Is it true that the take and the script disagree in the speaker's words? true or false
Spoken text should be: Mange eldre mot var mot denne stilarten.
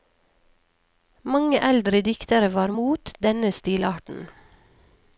true